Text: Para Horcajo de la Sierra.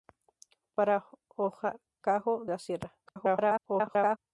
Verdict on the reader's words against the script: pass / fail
fail